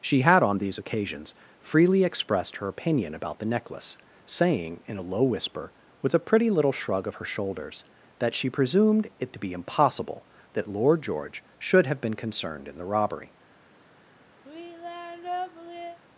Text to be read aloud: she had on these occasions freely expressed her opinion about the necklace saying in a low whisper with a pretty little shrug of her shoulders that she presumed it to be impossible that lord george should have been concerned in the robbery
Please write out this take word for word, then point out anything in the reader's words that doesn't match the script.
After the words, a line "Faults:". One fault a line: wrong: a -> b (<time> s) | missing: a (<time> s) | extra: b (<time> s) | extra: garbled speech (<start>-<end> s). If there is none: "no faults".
she had on these occasions freely expressed her opinion about the necklace saying in a low whisper with a pretty little shrug of her shoulders that she presumed it to be impossible that lord george should have been concerned in the robbery
Faults:
no faults